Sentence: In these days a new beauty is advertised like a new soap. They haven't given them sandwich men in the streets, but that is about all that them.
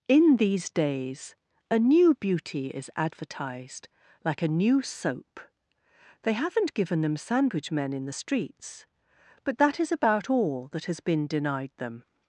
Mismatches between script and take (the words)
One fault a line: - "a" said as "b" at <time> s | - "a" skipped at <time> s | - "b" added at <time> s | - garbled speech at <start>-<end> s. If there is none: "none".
- "has been denied" added at 10.9 s